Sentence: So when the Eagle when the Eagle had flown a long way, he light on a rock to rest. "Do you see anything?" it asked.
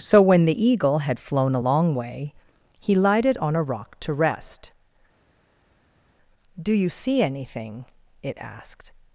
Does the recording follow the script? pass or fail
fail